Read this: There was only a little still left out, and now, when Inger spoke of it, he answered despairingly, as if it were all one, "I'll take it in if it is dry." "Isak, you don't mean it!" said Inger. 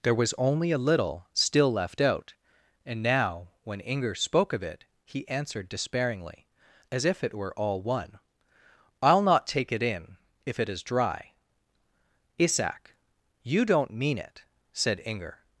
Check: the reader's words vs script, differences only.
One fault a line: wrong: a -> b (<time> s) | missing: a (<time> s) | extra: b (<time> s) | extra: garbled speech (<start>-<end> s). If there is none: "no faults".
extra: not (9.2 s)